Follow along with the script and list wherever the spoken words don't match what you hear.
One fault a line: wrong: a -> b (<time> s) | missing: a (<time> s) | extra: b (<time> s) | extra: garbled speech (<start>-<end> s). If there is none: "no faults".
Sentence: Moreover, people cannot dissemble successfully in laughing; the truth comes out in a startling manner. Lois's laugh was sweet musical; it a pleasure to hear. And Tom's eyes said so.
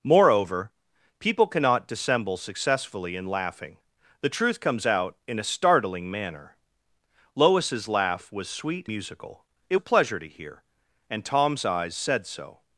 no faults